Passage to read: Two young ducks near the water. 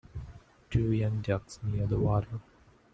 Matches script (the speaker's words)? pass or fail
pass